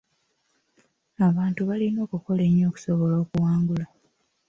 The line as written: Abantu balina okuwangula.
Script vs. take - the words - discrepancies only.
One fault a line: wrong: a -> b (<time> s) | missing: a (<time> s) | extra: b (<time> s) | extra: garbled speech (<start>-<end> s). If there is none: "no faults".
extra: okukola ennyo okusobola (2.0 s)